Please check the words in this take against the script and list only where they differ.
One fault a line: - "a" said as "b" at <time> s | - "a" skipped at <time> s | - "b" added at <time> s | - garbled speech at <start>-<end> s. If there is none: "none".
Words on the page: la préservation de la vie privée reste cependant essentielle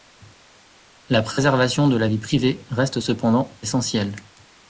none